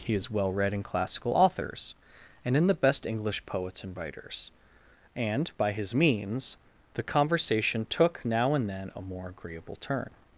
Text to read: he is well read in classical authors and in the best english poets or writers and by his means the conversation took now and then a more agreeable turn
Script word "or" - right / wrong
wrong